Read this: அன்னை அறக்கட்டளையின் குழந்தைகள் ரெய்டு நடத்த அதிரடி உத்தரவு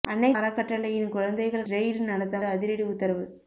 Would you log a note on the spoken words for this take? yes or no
no